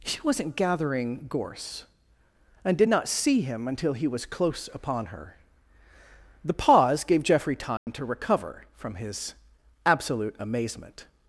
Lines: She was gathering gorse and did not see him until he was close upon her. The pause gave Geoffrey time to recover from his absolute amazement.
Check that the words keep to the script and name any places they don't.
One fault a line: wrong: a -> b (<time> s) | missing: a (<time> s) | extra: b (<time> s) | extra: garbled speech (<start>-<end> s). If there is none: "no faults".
wrong: was -> wasn't (0.2 s)